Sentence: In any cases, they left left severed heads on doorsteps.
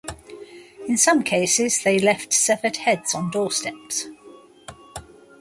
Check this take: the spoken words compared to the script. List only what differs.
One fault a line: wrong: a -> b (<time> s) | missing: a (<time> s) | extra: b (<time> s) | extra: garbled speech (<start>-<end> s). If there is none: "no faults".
wrong: any -> some (1.0 s)
missing: left (2.3 s)